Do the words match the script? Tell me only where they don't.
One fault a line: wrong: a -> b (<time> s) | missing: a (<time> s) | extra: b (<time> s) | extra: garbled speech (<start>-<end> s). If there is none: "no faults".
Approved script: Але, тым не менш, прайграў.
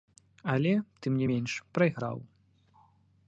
no faults